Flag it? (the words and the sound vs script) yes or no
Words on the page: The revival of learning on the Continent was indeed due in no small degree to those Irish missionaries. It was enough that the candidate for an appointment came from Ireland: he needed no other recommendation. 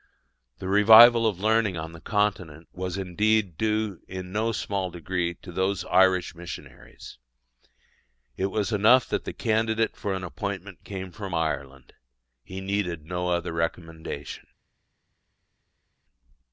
no